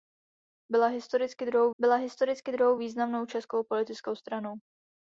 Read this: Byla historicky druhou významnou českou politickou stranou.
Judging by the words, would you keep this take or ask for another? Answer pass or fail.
fail